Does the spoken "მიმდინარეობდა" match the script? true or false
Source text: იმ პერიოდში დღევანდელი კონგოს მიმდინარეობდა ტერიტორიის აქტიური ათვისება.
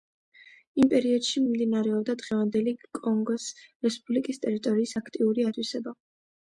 false